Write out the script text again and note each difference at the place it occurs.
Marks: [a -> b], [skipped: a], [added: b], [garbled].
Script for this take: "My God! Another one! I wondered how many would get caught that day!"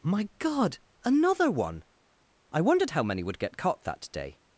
"My God! Another one! I wondered how many would get caught that day!"